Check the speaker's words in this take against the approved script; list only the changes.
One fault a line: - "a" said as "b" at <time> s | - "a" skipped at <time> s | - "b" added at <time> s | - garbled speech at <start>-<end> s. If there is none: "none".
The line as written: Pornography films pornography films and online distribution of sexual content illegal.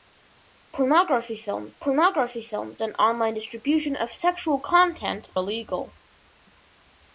none